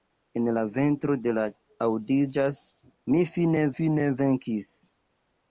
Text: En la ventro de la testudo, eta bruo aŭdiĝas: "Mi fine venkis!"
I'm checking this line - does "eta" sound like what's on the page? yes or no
no